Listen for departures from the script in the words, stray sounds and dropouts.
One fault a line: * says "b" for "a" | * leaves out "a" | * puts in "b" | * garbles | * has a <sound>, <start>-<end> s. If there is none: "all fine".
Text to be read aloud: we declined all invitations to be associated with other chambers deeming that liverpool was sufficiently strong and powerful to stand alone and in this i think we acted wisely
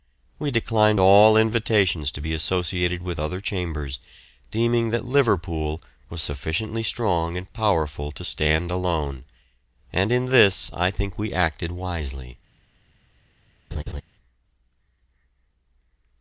* has a laugh, 13.7-14.0 s